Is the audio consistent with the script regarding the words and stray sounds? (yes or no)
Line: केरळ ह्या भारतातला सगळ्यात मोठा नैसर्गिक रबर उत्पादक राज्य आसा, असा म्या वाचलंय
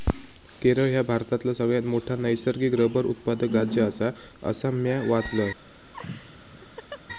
no